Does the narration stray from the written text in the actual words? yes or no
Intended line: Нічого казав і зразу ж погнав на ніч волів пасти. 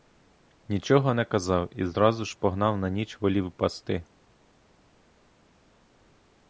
yes